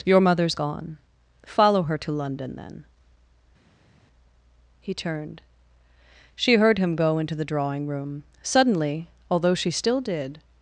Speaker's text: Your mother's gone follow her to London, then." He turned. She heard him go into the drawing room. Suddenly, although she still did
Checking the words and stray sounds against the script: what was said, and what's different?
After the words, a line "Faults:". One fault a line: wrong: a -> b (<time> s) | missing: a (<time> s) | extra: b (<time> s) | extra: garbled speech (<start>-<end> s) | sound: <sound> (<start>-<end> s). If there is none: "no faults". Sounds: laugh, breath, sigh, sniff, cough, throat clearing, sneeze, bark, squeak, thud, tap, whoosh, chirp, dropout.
Your mother's gone follow her to London, then." He turned. She heard him go into the drawing room. Suddenly, although she still did
Faults:
no faults